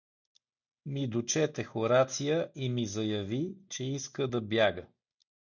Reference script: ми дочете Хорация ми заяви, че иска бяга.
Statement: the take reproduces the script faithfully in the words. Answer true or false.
false